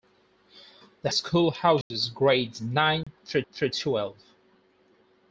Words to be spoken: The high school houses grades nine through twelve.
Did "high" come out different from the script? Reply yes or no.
yes